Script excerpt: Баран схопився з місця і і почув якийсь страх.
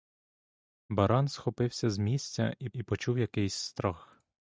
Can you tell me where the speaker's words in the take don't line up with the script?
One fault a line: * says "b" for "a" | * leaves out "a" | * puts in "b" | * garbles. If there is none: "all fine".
all fine